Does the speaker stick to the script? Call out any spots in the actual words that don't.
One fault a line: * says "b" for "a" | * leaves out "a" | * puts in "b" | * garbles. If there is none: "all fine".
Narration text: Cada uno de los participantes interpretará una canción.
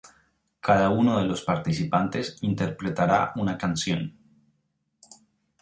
all fine